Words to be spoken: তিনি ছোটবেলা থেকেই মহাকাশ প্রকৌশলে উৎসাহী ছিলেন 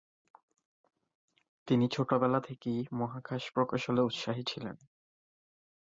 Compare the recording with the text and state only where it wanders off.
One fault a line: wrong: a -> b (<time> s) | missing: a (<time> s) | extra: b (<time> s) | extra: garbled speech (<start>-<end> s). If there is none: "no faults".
no faults